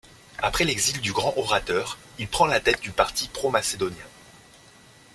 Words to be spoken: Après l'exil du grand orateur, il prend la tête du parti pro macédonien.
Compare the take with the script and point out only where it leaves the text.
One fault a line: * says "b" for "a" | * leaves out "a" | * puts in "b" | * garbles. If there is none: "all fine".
all fine